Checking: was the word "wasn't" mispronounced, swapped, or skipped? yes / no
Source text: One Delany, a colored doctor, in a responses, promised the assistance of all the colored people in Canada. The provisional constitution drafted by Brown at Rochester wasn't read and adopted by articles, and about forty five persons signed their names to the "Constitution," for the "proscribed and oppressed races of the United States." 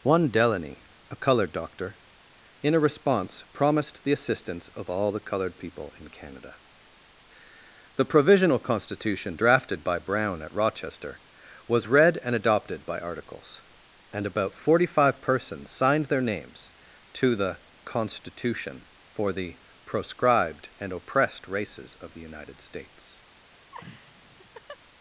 yes